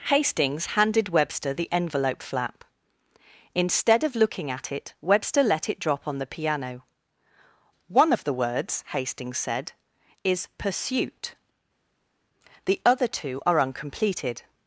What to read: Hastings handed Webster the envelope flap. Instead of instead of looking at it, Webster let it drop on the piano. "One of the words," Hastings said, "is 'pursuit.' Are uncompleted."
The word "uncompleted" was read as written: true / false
true